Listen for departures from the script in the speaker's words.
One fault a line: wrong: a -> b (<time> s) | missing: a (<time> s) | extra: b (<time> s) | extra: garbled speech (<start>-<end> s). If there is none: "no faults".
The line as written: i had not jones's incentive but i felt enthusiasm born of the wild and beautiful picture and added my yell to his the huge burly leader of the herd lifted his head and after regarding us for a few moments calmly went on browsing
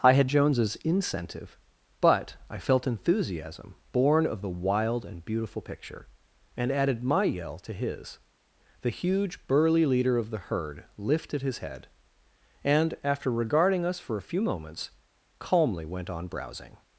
missing: not (0.3 s)